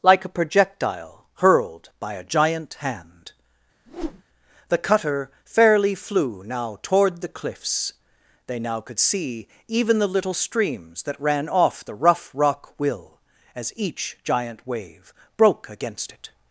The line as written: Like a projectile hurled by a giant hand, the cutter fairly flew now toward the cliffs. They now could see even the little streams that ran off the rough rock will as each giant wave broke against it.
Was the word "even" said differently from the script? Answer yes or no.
no